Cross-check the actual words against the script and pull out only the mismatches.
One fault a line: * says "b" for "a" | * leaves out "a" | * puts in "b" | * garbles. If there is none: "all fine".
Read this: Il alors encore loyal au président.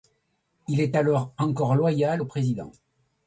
* puts in "est"